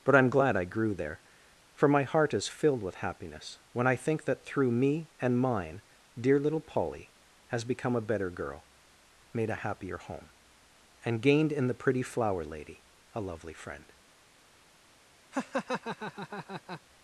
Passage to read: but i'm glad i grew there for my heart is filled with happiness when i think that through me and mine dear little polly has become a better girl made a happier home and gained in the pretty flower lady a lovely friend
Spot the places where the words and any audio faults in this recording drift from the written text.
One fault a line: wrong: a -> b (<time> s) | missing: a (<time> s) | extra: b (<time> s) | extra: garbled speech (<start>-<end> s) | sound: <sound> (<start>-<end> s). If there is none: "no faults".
sound: laugh (15.3-16.8 s)